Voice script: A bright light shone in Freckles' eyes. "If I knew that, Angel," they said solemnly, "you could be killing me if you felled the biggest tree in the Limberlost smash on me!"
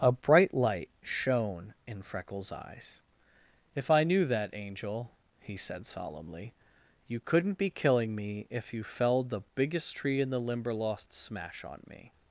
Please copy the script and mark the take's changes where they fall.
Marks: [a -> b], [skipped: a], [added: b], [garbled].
A bright light shone in Freckles' eyes. "If I knew that, Angel," [they -> he] said solemnly, "you [could -> couldn't] be killing me if you felled the biggest tree in the Limberlost smash on me!"